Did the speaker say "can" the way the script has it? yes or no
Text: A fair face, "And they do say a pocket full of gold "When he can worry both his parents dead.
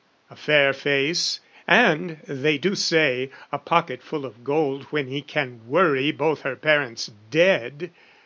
yes